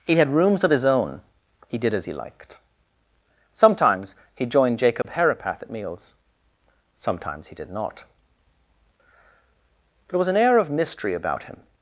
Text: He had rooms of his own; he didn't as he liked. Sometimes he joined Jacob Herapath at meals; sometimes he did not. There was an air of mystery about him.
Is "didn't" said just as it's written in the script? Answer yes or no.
no